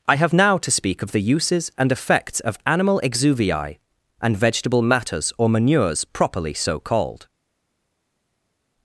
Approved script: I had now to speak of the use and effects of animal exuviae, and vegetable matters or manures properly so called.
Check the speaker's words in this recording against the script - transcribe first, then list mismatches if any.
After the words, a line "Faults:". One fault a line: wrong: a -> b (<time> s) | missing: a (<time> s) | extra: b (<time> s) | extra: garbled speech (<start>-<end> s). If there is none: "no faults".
I have now to speak of the uses and effects of animal exuviae, and vegetable matters or manures properly so called.
Faults:
wrong: had -> have (0.1 s)
wrong: use -> uses (1.2 s)